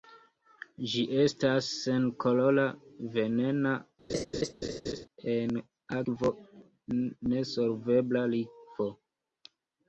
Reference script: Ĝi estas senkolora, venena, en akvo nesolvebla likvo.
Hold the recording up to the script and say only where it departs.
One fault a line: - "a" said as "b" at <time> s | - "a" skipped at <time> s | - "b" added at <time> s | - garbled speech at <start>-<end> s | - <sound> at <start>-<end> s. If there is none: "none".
- laugh at 4.1-5.1 s